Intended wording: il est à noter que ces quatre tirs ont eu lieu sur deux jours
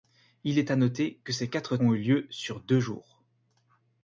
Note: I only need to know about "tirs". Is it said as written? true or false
false